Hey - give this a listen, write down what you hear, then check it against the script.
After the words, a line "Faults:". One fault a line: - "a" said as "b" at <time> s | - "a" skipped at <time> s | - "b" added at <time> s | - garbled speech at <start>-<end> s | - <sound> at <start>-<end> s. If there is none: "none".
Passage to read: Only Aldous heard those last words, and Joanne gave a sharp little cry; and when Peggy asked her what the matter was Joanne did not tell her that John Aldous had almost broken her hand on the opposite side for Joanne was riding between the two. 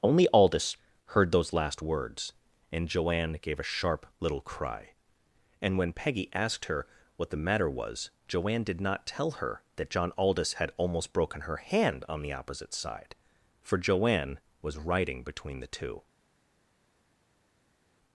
Only Aldous heard those last words, and Joanne gave a sharp little cry; and when Peggy asked her what the matter was Joanne did not tell her that John Aldous had almost broken her hand on the opposite side for Joanne was riding between the two.
Faults:
none